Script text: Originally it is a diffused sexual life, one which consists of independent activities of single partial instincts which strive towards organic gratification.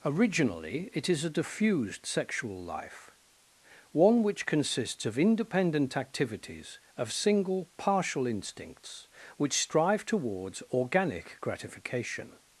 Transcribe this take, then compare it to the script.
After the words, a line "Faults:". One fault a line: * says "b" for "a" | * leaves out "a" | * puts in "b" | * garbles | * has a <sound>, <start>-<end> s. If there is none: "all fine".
Originally it is a diffused sexual life, one which consists of independent activities of single partial instincts which strive towards organic gratification.
Faults:
all fine